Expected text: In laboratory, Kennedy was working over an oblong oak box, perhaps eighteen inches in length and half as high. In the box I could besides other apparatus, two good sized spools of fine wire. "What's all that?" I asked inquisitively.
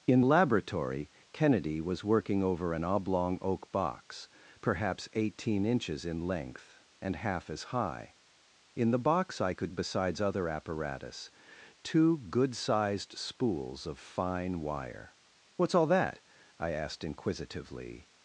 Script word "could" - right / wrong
right